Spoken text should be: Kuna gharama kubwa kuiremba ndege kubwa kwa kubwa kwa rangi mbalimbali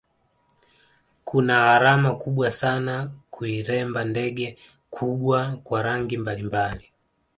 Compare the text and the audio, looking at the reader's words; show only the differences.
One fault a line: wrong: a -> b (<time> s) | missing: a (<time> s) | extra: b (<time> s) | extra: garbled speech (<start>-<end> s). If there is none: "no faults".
extra: sana (2.5 s)
missing: kubwa kwa (5.8 s)